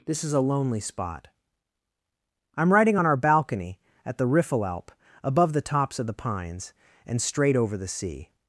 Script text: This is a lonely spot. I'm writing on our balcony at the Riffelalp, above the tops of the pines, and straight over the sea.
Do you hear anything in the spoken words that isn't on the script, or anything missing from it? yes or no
no